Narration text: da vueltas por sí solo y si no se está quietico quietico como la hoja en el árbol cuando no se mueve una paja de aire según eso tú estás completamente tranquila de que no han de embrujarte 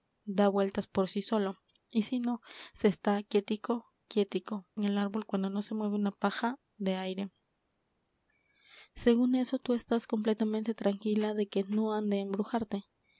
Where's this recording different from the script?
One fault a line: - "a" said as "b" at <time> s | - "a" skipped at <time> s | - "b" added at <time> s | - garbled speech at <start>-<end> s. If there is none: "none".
- "como la hoja" skipped at 4.7 s